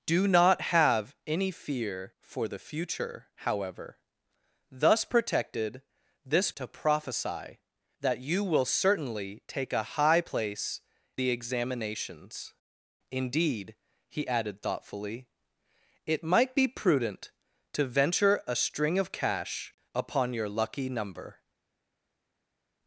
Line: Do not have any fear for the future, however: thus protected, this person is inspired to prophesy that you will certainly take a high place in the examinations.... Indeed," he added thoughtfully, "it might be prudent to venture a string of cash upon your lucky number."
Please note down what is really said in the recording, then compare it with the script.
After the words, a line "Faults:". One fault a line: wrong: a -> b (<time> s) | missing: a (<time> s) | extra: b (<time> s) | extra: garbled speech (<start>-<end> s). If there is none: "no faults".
Do not have any fear for the future, however: thus protected, this to prophesy that you will certainly take a high place the examinations.... Indeed," he added thoughtfully, "it might be prudent to venture a string of cash upon your lucky number."
Faults:
missing: person is inspired (6.5 s)
missing: in (10.8 s)